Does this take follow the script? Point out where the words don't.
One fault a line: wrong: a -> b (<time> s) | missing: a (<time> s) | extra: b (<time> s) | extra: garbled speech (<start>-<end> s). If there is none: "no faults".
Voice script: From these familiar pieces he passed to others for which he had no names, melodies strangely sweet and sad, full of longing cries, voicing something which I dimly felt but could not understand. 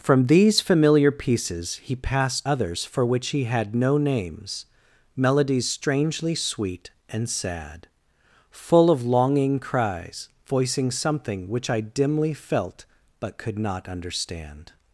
missing: to (2.5 s)